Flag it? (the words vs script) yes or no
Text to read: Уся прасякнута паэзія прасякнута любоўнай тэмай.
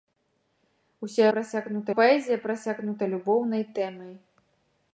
no